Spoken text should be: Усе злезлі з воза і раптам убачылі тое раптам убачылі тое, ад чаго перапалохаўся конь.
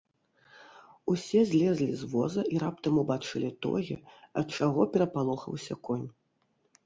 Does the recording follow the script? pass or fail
fail